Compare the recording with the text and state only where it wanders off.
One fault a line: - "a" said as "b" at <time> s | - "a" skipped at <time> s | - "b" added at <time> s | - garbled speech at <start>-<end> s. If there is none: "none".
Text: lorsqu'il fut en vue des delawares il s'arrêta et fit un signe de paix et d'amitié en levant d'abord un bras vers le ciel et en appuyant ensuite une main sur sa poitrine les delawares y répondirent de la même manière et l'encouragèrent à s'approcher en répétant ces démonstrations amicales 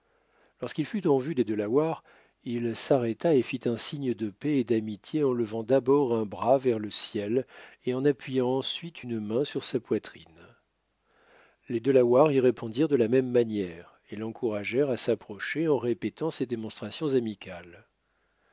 none